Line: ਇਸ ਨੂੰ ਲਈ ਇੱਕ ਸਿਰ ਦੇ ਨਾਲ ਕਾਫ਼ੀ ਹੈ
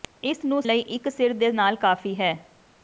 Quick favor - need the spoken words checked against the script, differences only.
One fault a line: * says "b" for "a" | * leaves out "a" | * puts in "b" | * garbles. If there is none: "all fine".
all fine